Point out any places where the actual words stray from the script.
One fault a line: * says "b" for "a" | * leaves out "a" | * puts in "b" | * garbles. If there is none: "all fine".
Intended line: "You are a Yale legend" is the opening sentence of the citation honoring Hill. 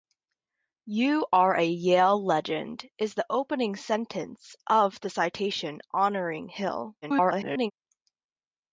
* garbles